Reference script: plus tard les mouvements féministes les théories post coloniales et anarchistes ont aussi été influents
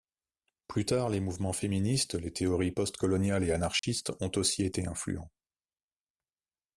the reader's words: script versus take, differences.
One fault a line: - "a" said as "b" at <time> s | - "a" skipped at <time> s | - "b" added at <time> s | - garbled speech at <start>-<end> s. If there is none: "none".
none